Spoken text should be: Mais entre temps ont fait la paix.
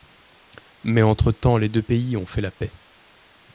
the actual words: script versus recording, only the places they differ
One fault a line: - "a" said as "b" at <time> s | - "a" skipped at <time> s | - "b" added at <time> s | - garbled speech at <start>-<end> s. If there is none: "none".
- "les deux pays" added at 1.6 s